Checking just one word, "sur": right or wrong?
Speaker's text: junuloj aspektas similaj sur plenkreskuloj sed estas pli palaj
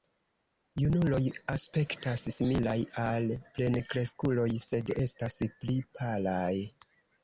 wrong